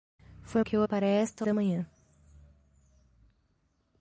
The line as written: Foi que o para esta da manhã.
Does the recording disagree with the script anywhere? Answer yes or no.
no